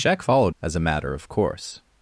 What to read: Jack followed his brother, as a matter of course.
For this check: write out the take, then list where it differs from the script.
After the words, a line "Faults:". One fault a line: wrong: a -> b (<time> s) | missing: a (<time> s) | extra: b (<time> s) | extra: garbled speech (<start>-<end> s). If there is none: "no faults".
Jack followed as a matter of course.
Faults:
missing: his brother (0.5 s)